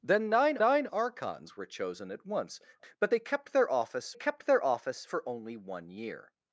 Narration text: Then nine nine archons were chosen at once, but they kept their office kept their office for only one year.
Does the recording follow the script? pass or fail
pass